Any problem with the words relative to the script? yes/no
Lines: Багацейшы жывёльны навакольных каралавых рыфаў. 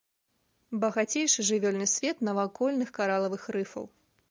yes